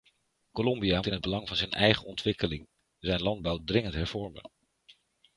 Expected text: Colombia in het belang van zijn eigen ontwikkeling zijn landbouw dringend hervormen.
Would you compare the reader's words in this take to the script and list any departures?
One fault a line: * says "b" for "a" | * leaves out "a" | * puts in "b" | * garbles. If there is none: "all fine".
all fine